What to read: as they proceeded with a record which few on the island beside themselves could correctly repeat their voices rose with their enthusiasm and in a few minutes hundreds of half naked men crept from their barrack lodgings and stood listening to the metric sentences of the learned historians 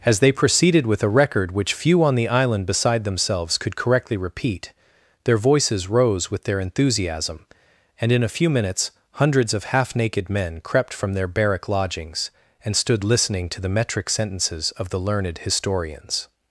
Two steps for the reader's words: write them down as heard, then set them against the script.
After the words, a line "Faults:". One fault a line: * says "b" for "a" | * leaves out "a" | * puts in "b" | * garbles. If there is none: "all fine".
as they proceeded with a record which few on the island beside themselves could correctly repeat their voices rose with their enthusiasm and in a few minutes hundreds of half naked men crept from their barrack lodgings and stood listening to the metric sentences of the learned historians
Faults:
all fine